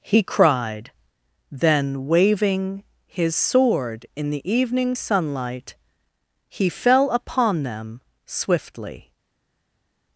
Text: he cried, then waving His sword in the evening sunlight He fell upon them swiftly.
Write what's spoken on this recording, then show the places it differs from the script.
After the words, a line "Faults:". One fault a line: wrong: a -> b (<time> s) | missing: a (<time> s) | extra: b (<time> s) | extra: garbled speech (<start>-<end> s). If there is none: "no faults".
he cried, then waving His sword in the evening sunlight He fell upon them swiftly.
Faults:
no faults